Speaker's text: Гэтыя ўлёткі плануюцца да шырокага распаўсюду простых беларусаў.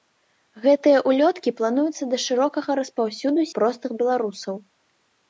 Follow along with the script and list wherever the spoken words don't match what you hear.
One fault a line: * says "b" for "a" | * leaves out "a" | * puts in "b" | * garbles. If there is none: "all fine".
all fine